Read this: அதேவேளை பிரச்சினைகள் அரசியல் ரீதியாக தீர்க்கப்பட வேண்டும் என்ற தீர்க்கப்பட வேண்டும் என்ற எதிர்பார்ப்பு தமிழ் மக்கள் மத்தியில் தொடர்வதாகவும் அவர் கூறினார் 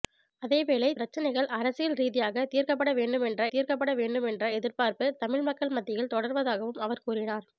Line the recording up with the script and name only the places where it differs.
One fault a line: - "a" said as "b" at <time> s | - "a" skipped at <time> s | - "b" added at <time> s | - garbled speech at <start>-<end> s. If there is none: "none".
none